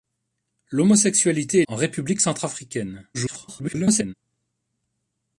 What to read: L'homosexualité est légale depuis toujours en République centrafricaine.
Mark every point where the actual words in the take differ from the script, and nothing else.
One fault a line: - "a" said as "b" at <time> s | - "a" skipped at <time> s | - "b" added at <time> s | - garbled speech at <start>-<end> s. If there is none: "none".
- "légale depuis toujours" skipped at 1.6 s
- garbled speech at 3.1-4.1 s